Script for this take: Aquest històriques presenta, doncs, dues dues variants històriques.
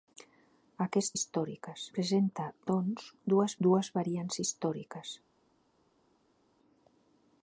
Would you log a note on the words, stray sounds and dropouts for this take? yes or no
no